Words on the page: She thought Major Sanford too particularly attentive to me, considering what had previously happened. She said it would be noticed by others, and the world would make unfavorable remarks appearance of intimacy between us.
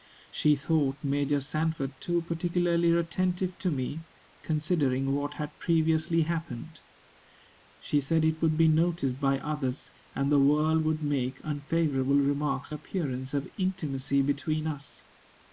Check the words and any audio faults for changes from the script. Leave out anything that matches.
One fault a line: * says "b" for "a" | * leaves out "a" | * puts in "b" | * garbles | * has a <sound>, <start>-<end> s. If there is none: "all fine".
all fine